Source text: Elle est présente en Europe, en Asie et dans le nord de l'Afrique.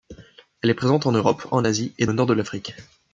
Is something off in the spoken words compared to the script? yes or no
yes